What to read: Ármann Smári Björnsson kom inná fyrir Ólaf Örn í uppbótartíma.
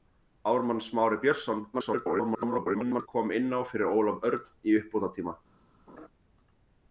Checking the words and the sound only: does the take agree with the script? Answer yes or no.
no